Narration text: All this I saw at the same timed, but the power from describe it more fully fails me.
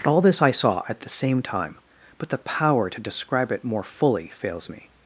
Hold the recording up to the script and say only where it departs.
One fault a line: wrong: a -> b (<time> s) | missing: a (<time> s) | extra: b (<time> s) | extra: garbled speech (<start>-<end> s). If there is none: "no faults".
wrong: timed -> time (1.4 s)
wrong: from -> to (2.9 s)